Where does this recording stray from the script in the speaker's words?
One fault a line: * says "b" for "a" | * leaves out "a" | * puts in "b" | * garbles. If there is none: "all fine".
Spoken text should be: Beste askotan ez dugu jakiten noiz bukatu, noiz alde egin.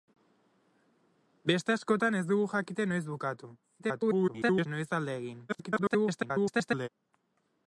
* garbles
* garbles